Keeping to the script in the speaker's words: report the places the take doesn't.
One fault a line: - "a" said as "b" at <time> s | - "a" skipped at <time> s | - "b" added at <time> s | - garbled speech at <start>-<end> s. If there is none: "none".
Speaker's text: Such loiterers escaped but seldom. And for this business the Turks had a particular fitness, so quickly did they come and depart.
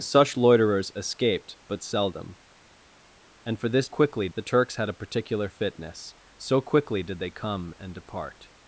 - "business" said as "quickly" at 3.9 s